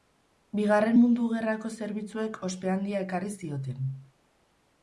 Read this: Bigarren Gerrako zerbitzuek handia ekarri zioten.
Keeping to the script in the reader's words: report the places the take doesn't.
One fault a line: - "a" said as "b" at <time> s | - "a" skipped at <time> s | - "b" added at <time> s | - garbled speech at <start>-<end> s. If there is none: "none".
- "Mundu" added at 1.0 s
- "ospe" added at 2.5 s